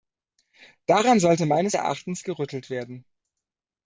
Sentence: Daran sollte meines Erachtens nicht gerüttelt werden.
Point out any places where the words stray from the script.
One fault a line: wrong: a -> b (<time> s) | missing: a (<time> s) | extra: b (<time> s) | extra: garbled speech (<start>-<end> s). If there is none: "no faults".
missing: nicht (2.2 s)